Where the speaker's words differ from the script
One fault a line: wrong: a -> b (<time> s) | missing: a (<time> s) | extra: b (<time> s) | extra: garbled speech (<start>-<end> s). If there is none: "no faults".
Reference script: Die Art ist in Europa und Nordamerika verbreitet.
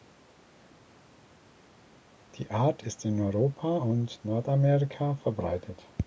no faults